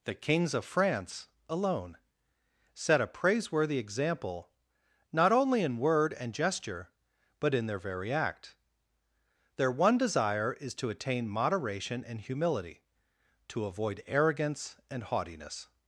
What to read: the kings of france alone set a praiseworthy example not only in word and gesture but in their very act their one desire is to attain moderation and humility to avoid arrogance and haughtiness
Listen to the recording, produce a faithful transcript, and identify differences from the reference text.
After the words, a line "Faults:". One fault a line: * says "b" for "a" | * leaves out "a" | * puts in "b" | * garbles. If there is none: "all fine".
the kings of france alone set a praiseworthy example not only in word and gesture but in their very act their one desire is to attain moderation and humility to avoid arrogance and haughtiness
Faults:
all fine